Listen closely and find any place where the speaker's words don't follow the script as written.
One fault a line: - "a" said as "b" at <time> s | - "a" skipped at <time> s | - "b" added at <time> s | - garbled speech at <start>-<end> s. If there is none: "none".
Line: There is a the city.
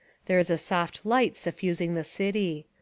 - "soft light suffusing" added at 0.6 s